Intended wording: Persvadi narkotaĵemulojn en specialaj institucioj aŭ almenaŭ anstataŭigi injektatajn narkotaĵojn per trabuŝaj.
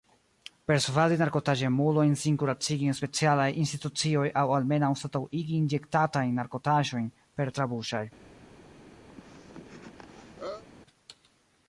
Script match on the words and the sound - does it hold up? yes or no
no